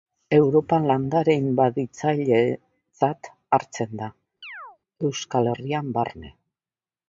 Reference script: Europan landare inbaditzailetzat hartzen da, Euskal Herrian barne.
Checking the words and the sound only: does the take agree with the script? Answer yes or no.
no